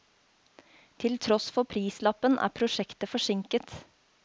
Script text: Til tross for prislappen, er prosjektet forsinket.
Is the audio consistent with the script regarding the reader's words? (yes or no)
yes